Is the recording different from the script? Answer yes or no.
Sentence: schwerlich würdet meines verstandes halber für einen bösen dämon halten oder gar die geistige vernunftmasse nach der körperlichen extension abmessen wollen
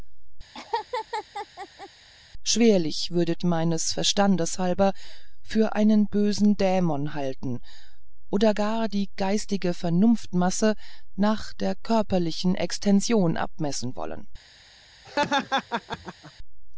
no